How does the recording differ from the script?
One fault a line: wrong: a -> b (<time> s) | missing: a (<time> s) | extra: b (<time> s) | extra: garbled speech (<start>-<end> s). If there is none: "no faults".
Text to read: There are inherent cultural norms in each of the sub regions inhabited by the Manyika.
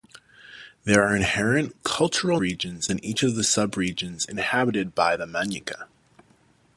wrong: norms -> regions (2.4 s)